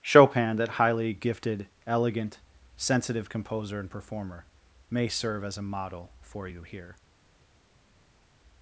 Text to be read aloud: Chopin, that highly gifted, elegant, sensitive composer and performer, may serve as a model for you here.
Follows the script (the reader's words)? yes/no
yes